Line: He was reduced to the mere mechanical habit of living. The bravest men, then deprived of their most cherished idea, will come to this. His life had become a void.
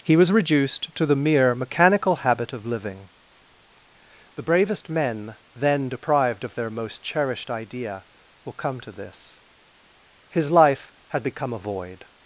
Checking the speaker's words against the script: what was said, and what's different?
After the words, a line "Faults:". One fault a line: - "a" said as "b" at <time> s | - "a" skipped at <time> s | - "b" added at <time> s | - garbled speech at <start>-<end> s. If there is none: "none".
He was reduced to the mere mechanical habit of living. The bravest men, then deprived of their most cherished idea, will come to this. His life had become a void.
Faults:
none